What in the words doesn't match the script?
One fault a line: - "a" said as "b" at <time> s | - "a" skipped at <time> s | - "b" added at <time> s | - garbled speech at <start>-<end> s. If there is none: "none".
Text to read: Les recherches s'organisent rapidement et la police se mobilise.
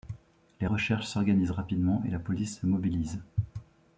none